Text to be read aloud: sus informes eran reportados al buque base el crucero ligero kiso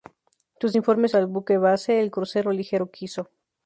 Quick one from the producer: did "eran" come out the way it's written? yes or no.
no